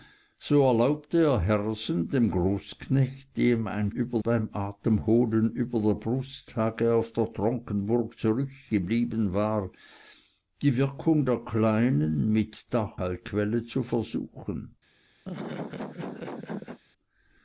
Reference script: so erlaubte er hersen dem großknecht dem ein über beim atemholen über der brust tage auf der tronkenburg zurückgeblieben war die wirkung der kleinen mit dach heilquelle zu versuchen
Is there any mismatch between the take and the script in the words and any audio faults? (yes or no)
yes